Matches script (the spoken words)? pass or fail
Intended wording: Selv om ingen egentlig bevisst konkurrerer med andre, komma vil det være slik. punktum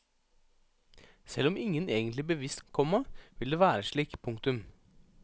fail